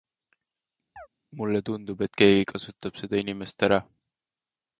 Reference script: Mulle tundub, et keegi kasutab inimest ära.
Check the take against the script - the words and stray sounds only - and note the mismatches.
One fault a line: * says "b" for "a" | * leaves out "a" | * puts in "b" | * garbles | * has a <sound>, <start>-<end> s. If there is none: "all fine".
* has a chirp, 1.0-1.1 s
* puts in "seda"